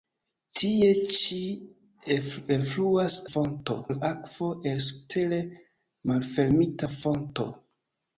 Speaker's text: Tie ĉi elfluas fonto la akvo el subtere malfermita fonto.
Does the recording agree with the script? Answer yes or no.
yes